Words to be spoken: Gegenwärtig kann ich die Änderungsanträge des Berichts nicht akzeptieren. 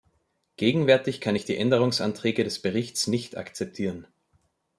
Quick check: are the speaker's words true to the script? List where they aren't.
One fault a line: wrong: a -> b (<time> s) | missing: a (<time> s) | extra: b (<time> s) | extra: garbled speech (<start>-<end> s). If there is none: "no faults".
no faults